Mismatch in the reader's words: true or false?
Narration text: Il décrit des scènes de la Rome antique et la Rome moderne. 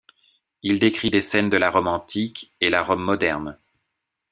false